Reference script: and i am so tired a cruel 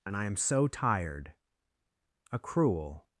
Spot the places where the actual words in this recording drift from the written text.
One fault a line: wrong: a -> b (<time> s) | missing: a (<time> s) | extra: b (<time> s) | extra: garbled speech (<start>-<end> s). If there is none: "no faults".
no faults